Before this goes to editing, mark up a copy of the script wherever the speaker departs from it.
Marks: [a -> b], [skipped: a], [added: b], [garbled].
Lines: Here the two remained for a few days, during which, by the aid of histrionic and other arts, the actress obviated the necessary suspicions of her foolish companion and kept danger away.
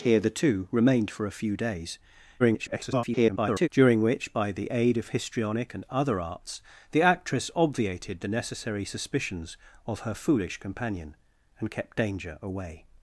Here the two remained for a few days, [garbled] during which, by the aid of histrionic and other arts, the actress obviated the necessary suspicions of her foolish companion and kept danger away.